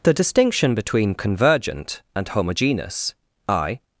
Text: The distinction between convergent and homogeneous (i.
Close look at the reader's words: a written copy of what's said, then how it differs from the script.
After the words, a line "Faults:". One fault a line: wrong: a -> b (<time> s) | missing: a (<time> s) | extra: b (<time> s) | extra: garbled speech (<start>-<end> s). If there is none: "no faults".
The distinction between convergent and homogeneous (i.
Faults:
no faults